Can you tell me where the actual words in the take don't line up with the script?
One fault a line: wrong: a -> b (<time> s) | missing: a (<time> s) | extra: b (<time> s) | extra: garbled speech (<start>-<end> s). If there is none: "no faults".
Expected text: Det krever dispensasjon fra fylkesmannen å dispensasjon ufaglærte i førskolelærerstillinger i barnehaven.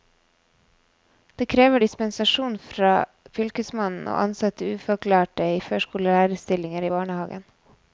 wrong: dispensasjon -> ansette (4.2 s)